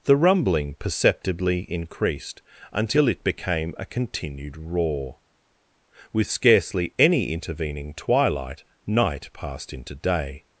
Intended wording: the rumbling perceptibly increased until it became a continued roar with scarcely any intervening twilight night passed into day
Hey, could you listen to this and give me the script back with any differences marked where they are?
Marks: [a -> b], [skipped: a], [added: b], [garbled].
the rumbling perceptibly increased until it became a continued roar with scarcely any intervening twilight night passed into day